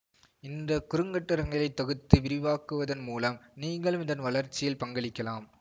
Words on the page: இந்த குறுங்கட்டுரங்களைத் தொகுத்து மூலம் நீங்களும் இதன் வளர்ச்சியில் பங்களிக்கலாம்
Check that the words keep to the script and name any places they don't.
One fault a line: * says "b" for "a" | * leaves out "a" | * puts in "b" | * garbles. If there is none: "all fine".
* puts in "விரிவாக்குவதன்"